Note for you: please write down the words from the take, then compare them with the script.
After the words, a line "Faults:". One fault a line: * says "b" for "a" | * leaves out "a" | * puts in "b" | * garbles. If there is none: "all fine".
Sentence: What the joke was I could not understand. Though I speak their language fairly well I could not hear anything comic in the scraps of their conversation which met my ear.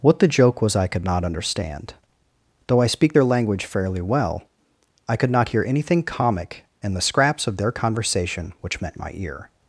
What the joke was I could not understand. Though I speak their language fairly well I could not hear anything comic in the scraps of their conversation which met my ear.
Faults:
all fine